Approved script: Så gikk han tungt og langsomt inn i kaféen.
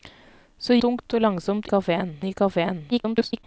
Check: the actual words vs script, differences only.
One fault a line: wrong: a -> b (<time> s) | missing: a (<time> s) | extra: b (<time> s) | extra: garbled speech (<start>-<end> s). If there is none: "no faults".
missing: gikk han (0.8 s)
wrong: inn -> kaféen (1.7 s)
extra: garbled speech (2.9-3.4 s)